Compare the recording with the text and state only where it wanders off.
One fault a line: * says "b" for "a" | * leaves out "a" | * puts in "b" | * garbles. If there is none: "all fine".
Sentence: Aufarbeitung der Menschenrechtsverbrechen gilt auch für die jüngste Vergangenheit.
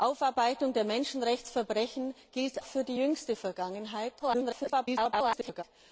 * leaves out "auch"
* garbles